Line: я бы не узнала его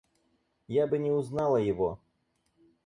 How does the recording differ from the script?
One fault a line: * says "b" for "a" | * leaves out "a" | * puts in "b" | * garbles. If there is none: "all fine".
all fine